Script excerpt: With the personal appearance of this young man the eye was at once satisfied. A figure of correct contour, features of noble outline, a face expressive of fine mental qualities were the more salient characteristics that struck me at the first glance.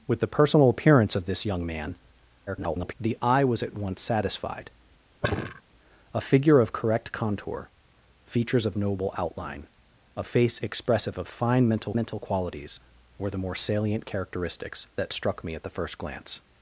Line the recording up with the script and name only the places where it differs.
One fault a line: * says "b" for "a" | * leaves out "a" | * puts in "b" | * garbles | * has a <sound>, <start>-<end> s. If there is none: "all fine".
* garbles
* has a sigh, 5.2-5.6 s
* puts in "mental"